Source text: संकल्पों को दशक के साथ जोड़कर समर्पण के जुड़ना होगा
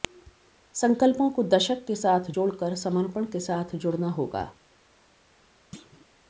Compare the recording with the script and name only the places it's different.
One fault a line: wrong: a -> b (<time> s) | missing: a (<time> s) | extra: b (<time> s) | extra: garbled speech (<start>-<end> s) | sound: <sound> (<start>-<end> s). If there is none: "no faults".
extra: साथ (3.4 s)
sound: thud (5.7-6.1 s)